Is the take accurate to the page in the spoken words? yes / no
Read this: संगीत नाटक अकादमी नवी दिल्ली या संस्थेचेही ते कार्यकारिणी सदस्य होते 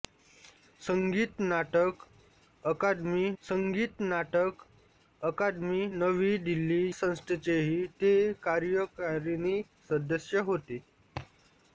no